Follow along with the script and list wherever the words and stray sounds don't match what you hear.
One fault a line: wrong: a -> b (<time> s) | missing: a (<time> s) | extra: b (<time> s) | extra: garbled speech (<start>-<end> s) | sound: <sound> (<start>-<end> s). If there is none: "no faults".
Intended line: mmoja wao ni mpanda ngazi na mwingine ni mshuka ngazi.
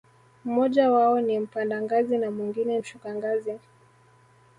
missing: ni (2.8 s)